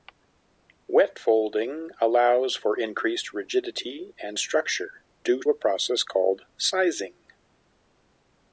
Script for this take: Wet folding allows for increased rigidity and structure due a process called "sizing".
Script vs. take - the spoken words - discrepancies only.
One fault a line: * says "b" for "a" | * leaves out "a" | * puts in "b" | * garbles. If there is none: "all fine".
all fine